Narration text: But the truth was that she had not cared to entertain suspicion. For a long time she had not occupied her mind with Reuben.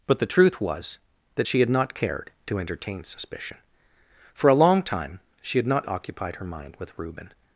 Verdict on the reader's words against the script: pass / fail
pass